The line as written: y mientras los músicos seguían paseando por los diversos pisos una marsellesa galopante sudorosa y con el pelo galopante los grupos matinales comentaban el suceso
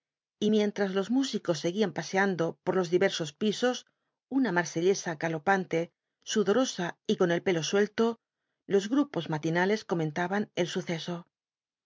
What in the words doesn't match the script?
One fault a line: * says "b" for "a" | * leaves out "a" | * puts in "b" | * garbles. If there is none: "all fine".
* says "suelto" for "galopante"